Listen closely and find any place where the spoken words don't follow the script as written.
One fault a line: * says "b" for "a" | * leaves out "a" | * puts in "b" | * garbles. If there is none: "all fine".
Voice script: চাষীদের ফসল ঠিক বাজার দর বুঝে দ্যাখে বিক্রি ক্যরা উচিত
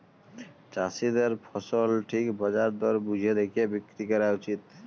all fine